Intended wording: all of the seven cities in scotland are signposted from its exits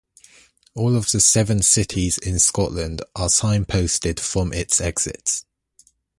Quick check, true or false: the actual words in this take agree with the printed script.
true